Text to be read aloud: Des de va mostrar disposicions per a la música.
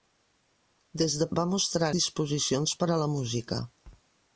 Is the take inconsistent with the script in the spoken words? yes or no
no